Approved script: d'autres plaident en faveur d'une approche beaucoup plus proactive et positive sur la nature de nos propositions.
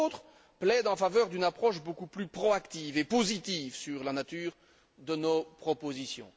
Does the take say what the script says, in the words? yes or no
yes